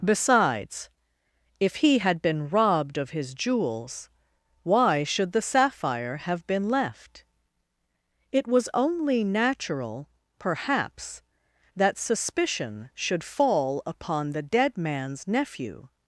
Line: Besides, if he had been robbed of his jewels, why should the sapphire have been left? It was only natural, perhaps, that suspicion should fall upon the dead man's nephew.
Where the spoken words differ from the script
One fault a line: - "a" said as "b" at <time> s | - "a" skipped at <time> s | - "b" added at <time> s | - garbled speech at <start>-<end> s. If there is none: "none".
none